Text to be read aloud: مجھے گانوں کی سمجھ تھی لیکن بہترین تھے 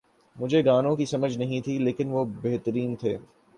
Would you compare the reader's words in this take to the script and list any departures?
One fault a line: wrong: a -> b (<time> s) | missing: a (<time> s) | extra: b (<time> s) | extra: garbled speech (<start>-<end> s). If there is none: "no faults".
extra: نہیں (1.4 s)
extra: وہ (2.1 s)